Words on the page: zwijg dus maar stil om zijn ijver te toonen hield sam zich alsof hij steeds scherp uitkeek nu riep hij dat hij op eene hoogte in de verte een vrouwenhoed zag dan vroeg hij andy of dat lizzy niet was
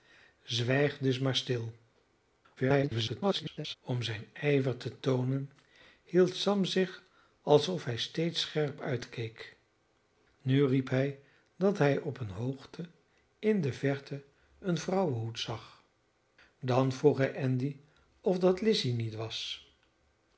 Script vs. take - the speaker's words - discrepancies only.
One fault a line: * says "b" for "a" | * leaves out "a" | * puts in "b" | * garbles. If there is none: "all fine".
* garbles